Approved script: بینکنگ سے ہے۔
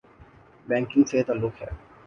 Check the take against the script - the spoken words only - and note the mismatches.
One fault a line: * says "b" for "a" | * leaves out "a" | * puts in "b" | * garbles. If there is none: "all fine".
* puts in "تعلق"